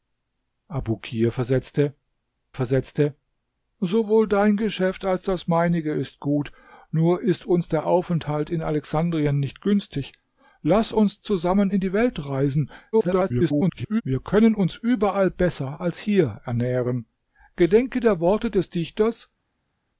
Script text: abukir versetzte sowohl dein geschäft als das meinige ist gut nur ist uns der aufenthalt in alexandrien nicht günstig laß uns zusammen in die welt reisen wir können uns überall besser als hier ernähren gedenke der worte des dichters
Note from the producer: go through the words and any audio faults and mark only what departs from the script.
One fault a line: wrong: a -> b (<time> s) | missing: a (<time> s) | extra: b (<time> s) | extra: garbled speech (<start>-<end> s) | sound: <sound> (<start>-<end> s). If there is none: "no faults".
extra: versetzte (2.5 s)
extra: garbled speech (12.9-14.0 s)